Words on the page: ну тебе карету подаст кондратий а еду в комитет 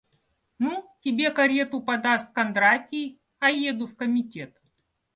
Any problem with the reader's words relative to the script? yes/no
no